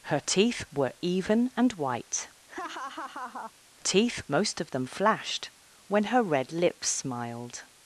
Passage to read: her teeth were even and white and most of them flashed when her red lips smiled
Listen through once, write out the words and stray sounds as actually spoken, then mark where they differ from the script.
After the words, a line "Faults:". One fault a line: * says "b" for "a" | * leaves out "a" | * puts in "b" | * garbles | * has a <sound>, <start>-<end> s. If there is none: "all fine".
her teeth were even and white teeth most of them flashed when her red lips smiled
Faults:
* has a laugh, 2.5-3.5 s
* says "teeth" for "and"